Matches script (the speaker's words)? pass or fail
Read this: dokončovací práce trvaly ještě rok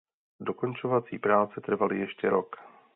pass